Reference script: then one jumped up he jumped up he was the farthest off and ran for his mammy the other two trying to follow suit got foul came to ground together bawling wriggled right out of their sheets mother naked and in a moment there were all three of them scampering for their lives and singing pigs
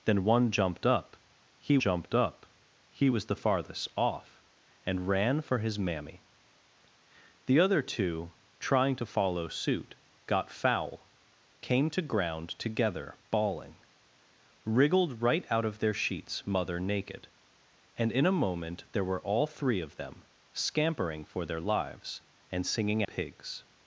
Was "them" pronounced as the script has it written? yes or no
yes